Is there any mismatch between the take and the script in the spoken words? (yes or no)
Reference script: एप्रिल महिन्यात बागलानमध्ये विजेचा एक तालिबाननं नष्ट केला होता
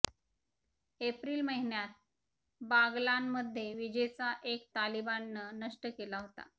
no